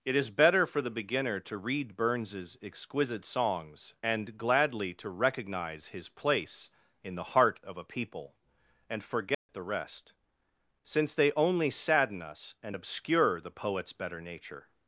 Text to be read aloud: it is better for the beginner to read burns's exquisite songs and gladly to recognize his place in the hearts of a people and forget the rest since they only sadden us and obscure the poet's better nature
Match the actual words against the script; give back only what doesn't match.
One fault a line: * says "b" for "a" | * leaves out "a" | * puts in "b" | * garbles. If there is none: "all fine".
* says "heart" for "hearts"